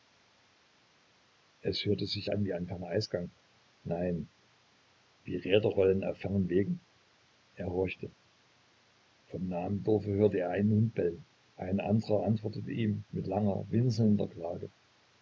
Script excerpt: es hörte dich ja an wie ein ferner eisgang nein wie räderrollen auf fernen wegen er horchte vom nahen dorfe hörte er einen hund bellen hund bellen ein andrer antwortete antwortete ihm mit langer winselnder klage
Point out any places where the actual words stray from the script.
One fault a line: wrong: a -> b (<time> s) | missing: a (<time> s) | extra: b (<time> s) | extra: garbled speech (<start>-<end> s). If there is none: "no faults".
wrong: dich -> sich (2.1 s)
missing: hund bellen (11.3 s)
missing: antwortete (12.7 s)